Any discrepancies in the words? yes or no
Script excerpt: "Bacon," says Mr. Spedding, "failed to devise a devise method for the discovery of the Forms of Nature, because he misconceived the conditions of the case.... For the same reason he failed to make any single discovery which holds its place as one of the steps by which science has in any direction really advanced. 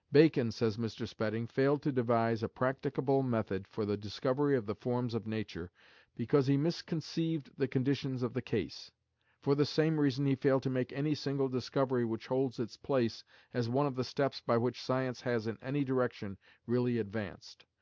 yes